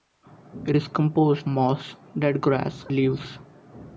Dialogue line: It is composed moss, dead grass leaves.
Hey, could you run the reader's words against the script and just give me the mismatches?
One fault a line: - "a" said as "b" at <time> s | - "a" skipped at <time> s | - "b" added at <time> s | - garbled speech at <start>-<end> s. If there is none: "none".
none